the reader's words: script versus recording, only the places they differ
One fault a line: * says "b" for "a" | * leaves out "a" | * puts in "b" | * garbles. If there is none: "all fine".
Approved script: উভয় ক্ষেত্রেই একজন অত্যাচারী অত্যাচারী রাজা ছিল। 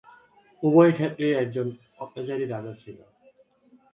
* leaves out "অত্যাচারী"